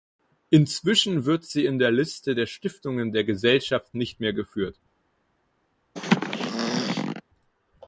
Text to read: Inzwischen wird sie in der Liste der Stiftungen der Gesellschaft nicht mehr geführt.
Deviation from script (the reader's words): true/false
false